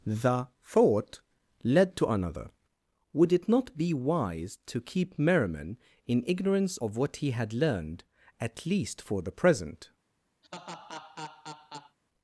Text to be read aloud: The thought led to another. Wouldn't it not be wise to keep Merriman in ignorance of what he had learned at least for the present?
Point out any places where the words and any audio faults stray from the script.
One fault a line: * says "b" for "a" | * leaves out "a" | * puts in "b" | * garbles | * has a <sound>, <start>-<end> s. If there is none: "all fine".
* says "Would" for "Wouldn't"
* has a laugh, 10.4-12.0 s